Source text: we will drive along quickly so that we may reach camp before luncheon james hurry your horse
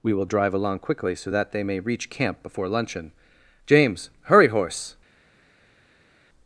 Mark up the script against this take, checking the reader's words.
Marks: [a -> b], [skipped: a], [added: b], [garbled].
we will drive along quickly so that [we -> they] may reach camp before luncheon james hurry [skipped: your] horse